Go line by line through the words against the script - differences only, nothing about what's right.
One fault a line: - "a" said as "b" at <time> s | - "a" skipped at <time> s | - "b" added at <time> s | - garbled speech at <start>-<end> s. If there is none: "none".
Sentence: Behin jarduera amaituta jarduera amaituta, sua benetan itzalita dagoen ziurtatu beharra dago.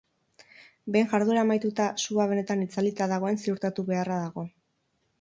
- "jarduera amaituta" skipped at 1.9 s